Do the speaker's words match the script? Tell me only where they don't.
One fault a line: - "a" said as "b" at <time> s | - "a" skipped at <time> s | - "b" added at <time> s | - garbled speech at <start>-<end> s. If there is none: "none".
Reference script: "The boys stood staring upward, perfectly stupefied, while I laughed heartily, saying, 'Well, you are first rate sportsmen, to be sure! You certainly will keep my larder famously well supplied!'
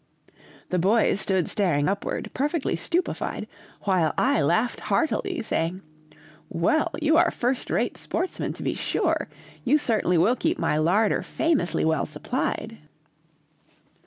none